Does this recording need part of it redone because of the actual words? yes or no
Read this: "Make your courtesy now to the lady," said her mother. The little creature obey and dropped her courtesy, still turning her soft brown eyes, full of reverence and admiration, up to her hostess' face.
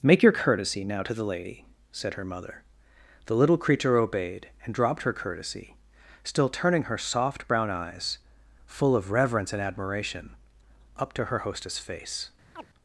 yes